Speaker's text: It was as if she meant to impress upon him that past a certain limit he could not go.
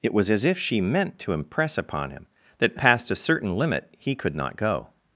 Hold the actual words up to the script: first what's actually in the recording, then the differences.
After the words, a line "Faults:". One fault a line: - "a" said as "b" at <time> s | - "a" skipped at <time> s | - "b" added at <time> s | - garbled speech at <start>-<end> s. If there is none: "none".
It was as if she meant to impress upon him that past a certain limit he could not go.
Faults:
none